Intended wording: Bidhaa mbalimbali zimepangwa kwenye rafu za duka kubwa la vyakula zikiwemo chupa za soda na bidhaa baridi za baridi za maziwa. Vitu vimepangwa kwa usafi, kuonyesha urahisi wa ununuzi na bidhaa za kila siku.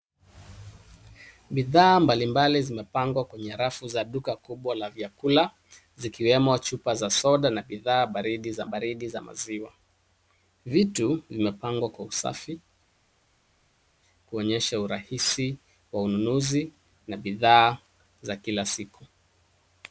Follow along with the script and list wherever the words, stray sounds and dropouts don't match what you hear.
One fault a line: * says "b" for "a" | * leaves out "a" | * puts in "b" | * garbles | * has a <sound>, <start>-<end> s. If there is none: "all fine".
all fine